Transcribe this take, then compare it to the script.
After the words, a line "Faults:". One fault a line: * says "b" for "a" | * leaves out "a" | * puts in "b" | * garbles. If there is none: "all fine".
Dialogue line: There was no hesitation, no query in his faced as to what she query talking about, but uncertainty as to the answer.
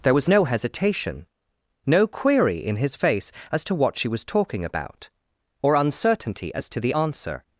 There was no hesitation, no query in his face as to what she was talking about, or uncertainty as to the answer.
Faults:
* says "face" for "faced"
* says "was" for "query"
* says "or" for "but"